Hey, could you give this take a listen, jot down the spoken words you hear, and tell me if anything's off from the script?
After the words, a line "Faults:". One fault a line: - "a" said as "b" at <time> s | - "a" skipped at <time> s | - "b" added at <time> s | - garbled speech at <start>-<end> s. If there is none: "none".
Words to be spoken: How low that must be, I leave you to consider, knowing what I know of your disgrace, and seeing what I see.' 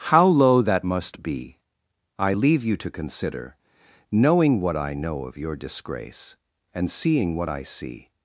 How low that must be, I leave you to consider, knowing what I know of your disgrace, and seeing what I see.'
Faults:
none